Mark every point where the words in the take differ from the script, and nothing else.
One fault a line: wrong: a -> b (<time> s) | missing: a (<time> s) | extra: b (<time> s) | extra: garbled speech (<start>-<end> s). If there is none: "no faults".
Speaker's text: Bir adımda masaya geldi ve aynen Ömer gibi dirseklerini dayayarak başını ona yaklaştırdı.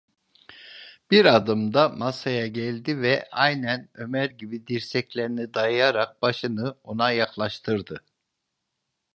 no faults